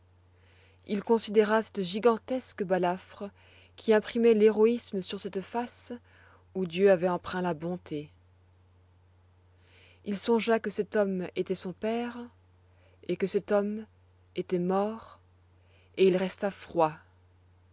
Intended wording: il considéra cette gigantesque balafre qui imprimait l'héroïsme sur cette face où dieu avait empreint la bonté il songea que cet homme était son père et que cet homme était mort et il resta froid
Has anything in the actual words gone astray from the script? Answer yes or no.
no